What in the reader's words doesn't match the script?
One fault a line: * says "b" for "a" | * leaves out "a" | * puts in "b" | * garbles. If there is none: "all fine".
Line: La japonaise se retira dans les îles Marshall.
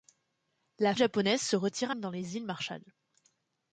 all fine